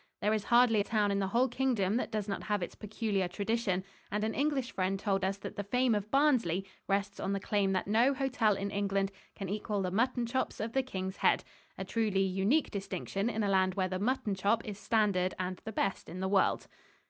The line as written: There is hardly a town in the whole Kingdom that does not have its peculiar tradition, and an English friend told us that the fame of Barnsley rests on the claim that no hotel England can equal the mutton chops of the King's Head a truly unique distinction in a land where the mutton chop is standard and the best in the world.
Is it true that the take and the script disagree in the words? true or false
true